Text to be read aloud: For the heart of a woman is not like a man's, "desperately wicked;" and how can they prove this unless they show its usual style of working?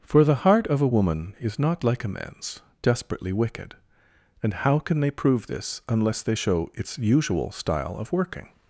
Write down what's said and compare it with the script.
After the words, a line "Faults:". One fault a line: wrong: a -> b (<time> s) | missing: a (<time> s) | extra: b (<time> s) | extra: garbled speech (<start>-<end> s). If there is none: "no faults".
For the heart of a woman is not like a man's, "desperately wicked;" and how can they prove this unless they show its usual style of working?
Faults:
no faults